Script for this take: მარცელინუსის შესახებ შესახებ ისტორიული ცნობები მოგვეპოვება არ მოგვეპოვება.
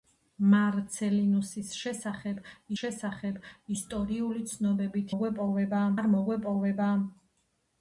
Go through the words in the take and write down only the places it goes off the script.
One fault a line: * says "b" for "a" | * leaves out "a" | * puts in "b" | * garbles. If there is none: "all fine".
all fine